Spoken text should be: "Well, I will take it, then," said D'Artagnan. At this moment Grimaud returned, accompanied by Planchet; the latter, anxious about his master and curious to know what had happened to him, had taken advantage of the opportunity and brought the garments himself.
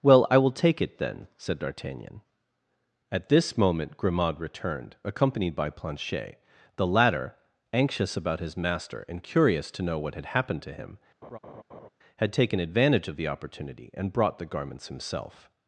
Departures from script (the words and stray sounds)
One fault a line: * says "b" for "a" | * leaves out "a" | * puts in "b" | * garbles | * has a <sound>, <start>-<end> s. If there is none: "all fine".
* has a laugh, 11.2-11.9 s